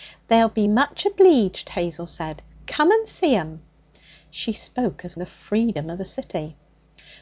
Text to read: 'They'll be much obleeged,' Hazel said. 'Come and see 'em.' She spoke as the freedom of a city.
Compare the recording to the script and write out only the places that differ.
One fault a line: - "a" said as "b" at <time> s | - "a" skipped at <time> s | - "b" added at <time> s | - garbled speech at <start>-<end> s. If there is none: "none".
none